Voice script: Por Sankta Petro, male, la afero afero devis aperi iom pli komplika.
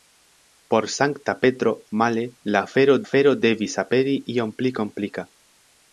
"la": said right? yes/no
yes